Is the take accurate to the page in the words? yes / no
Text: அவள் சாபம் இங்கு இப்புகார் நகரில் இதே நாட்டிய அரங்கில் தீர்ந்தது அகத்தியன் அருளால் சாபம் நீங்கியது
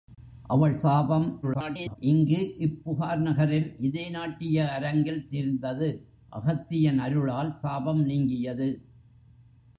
no